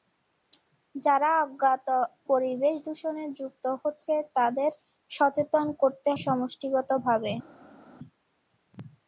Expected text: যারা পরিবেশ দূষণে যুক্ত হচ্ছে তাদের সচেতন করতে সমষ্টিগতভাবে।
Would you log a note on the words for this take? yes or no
no